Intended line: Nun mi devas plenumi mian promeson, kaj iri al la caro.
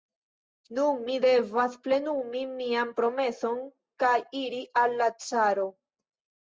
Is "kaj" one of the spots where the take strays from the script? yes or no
no